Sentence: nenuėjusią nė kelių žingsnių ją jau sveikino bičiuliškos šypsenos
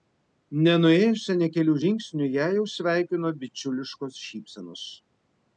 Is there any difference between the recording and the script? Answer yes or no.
no